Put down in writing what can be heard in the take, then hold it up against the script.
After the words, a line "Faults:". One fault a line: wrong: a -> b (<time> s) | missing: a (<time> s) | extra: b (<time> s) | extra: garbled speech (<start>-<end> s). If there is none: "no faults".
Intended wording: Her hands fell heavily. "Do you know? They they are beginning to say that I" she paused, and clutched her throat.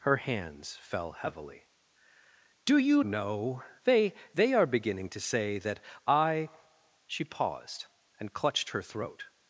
Her hands fell heavily. "Do you know? They they are beginning to say that I" she paused, and clutched her throat.
Faults:
no faults